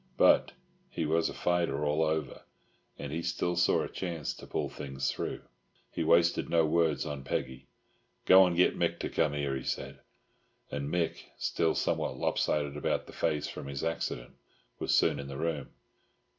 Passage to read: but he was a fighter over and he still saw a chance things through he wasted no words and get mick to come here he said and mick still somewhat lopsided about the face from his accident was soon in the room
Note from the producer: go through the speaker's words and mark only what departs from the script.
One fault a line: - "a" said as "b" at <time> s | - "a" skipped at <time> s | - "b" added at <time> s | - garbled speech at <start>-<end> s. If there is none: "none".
- "all" added at 1.9 s
- "to pull" added at 4.3 s
- "on peggy go" added at 7.1 s